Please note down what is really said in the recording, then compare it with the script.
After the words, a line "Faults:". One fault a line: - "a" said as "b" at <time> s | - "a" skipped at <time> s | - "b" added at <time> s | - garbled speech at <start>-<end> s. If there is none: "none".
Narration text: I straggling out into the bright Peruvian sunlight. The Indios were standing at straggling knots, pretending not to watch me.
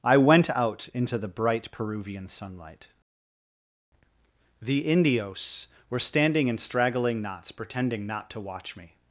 I went out into the bright Peruvian sunlight. The Indios were standing in straggling knots, pretending not to watch me.
Faults:
- "straggling" said as "went" at 0.2 s
- "at" said as "in" at 6.5 s